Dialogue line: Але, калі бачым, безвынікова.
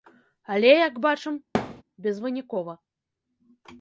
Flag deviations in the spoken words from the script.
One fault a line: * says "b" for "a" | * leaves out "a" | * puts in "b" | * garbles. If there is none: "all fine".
* says "як" for "калі"